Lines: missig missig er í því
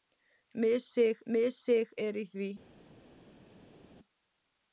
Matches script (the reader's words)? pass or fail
pass